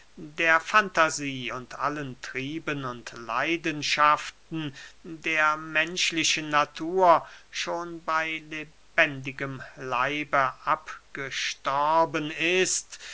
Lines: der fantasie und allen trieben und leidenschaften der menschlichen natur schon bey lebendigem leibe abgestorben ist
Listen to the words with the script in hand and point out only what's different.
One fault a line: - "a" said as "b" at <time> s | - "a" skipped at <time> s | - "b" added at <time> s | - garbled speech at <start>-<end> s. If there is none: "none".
none